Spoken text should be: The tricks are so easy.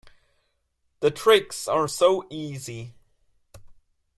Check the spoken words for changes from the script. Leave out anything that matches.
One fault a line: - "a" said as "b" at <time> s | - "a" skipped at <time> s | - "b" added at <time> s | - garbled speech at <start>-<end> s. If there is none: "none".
none